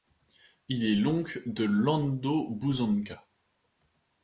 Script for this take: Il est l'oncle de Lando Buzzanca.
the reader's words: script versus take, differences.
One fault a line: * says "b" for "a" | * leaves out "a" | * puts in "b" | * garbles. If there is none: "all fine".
all fine